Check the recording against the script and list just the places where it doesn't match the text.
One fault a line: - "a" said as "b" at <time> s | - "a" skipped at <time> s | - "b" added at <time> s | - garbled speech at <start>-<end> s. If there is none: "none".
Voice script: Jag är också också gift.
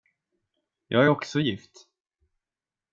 - "också" skipped at 1.4 s